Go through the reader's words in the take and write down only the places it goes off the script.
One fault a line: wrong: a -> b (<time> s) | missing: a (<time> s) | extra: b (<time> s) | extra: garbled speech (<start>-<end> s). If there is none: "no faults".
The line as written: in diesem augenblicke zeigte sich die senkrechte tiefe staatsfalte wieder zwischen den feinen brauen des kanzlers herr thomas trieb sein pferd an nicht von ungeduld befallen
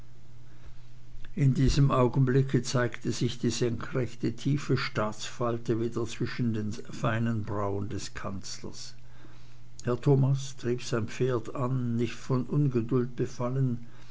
no faults